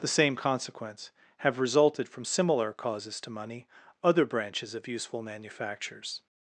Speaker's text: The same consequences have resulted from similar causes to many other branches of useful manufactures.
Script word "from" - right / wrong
right